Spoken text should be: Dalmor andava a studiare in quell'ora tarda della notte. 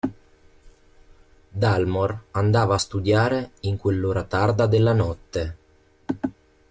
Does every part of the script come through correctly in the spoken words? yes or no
yes